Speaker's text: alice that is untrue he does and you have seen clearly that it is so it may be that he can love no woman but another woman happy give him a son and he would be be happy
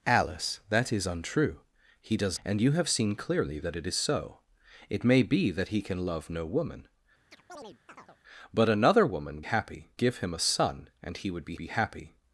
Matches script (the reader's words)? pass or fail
pass